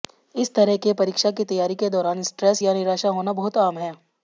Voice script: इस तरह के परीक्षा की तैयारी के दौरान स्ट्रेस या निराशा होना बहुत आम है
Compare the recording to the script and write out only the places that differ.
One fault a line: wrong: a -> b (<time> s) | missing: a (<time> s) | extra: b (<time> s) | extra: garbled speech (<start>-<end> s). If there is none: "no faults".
no faults